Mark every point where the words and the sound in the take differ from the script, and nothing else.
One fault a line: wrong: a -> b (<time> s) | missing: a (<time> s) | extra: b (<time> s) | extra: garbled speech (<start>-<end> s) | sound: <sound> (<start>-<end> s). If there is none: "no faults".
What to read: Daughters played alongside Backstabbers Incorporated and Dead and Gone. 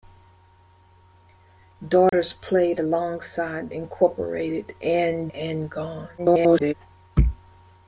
sound: dropout (2.1-2.1 s)
missing: Backstabbers (3.7 s)
missing: Dead (5.3 s)
extra: garbled speech (6.2-6.7 s)